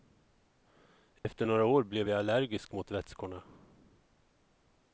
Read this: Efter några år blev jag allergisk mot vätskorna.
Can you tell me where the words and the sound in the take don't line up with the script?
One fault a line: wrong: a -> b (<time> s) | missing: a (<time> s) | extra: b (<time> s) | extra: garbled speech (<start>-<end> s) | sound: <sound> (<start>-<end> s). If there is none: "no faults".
sound: dropout (1.2-1.2 s)